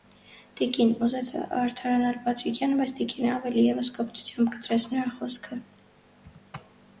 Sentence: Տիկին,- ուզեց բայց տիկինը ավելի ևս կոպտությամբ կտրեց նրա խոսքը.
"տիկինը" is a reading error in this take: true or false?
false